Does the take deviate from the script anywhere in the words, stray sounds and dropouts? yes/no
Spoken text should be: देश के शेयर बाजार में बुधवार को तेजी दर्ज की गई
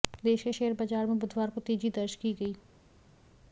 no